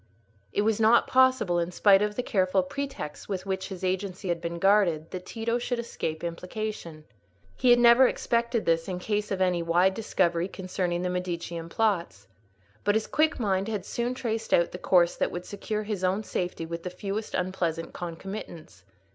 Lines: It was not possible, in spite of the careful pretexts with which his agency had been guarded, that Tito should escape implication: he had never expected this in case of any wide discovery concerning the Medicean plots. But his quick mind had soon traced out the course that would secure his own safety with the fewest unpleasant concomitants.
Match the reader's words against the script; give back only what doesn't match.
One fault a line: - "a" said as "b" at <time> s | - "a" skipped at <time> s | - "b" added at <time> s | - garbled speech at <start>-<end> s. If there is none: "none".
none